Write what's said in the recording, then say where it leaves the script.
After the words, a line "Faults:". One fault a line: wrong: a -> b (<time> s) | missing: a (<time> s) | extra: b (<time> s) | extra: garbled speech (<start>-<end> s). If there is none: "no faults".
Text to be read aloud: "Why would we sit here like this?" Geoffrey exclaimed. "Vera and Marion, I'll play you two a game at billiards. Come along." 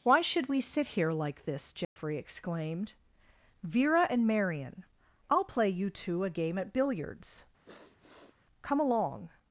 "Why should we sit here like this?" Geoffrey exclaimed. "Vera and Marion, I'll play you two a game at billiards. Come along."
Faults:
wrong: would -> should (0.2 s)